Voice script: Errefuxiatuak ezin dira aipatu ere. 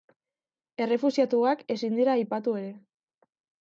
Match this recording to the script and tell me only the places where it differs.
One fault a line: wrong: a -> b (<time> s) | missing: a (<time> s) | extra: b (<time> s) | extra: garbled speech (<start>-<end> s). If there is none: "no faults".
no faults